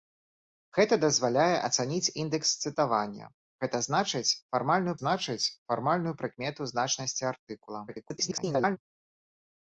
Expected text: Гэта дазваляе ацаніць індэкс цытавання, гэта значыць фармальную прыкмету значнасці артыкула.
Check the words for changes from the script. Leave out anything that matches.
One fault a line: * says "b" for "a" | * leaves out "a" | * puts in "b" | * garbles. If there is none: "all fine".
* puts in "значыць фармальную"
* garbles